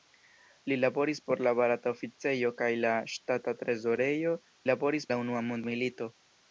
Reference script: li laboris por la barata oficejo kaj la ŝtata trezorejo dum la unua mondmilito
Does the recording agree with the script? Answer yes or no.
no